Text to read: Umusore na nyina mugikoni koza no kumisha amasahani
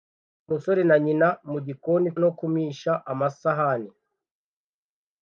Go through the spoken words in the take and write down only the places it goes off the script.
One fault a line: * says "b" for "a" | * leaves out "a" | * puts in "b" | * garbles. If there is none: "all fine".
* leaves out "koza"